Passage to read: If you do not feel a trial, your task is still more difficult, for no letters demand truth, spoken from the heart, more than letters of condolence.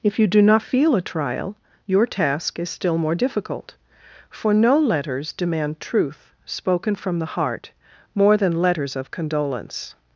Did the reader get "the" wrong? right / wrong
right